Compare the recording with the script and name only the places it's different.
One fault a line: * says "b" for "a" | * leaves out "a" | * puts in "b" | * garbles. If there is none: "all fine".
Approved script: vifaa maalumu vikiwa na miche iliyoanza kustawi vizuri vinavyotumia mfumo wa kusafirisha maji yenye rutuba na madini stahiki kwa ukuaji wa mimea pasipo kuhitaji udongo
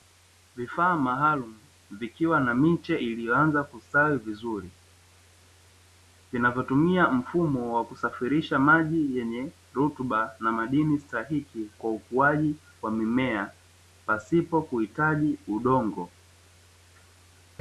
all fine